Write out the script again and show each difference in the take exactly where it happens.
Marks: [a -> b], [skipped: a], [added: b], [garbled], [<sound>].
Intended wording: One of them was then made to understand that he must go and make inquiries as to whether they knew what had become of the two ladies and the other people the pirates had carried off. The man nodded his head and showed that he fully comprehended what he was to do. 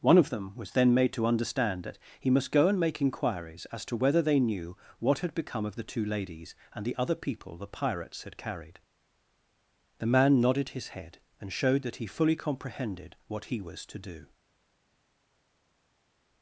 One of them was then made to understand that he must go and make inquiries as to whether they knew what had become of the two ladies and the other people the pirates had carried [skipped: off.] The man nodded his head and showed that he fully comprehended what he was to do.